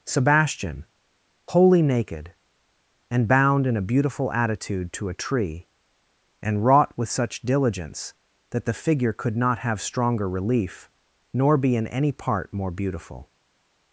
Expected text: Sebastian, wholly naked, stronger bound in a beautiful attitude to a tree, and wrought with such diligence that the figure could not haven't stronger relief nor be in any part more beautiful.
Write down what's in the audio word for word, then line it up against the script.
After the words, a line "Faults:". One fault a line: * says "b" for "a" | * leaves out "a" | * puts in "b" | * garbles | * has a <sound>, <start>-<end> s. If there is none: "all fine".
Sebastian, wholly naked, and bound in a beautiful attitude to a tree, and wrought with such diligence that the figure could not have stronger relief nor be in any part more beautiful.
Faults:
* says "and" for "stronger"
* says "have" for "haven't"